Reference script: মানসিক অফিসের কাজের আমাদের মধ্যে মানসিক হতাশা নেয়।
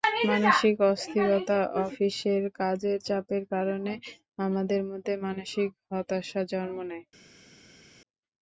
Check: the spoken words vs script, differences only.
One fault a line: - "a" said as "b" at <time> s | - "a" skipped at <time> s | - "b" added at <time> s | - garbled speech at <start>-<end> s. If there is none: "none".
- "অস্থিরতা" added at 0.9 s
- "চাপের কারণে" added at 3.1 s
- "জন্ম" added at 6.5 s